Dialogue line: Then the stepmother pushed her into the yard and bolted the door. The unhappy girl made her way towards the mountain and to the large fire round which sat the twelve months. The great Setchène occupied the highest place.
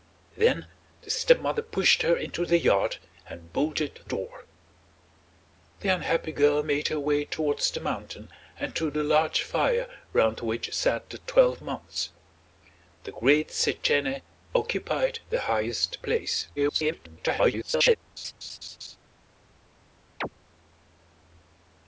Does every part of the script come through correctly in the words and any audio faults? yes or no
no